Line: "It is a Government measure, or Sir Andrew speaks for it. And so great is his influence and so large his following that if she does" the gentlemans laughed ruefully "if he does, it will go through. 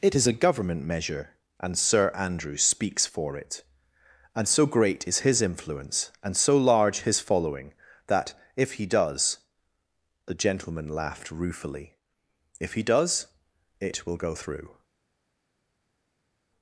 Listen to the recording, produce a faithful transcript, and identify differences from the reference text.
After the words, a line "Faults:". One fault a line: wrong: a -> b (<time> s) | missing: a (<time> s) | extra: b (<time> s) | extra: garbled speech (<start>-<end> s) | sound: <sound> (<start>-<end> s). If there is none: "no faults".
"It is a Government measure, and Sir Andrew speaks for it. And so great is his influence and so large his following that if he does" the gentleman laughed ruefully "if he does, it will go through.
Faults:
wrong: or -> and (1.6 s)
wrong: she -> he (8.7 s)
wrong: gentlemans -> gentleman (10.3 s)